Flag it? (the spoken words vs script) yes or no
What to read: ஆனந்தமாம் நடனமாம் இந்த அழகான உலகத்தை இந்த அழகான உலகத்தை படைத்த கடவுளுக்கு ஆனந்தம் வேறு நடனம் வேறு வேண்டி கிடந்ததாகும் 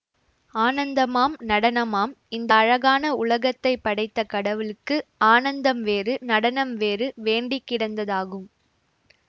yes